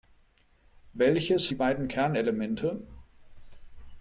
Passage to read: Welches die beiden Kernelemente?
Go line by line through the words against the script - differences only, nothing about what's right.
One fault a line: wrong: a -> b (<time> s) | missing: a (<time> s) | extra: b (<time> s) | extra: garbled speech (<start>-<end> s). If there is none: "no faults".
no faults